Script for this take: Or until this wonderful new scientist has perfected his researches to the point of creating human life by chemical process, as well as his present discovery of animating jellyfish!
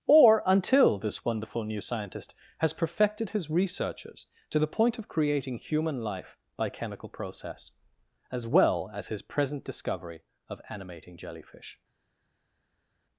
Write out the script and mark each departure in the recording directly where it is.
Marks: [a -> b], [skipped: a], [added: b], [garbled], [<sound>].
Or until this wonderful new scientist has perfected his researches to the point of creating human life by chemical process, as well as his present discovery of animating jellyfish!